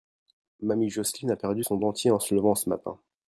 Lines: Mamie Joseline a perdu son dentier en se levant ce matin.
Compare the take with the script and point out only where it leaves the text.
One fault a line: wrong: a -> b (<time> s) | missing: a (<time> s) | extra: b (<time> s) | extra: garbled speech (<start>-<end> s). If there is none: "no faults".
no faults